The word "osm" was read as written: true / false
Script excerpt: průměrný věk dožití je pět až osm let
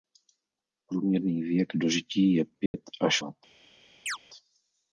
false